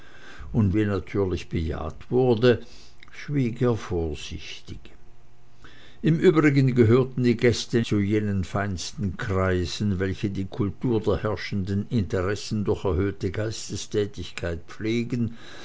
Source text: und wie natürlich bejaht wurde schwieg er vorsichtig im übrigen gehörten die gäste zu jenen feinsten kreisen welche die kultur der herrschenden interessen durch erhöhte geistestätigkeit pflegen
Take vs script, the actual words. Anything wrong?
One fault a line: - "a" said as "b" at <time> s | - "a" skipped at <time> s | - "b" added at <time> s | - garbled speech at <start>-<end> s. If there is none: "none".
none